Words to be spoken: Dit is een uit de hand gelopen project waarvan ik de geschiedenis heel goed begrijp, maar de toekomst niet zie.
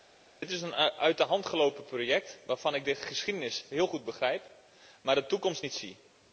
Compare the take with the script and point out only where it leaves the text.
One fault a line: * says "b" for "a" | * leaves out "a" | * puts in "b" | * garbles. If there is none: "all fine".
all fine